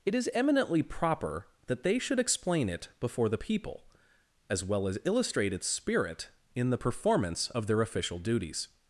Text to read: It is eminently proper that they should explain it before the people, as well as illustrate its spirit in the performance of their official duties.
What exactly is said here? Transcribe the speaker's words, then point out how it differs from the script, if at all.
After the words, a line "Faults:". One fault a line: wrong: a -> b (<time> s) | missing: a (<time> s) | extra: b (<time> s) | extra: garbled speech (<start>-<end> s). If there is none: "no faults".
It is eminently proper that they should explain it before the people, as well as illustrate its spirit in the performance of their official duties.
Faults:
no faults